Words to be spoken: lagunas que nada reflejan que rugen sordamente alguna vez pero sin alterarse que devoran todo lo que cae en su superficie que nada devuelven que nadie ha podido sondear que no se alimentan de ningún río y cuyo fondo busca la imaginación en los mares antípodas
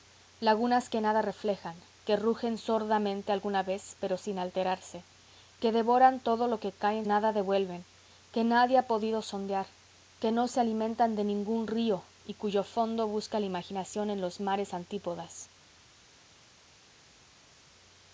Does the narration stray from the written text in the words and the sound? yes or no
yes